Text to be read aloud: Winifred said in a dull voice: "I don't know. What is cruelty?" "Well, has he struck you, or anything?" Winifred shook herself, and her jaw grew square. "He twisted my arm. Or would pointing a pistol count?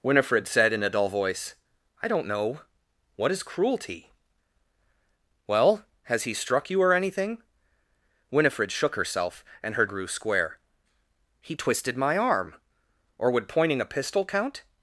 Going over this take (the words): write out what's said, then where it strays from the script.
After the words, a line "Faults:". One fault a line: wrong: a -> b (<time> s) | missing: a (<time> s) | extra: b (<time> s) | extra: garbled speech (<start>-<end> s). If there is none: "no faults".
Winifred said in a dull voice: "I don't know. What is cruelty?" "Well, has he struck you, or anything?" Winifred shook herself, and her grew square. "He twisted my arm. Or would pointing a pistol count?
Faults:
missing: jaw (9.8 s)